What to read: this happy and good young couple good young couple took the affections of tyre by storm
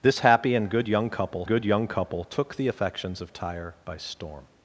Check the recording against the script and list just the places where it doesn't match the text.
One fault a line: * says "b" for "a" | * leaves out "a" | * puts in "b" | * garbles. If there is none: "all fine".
all fine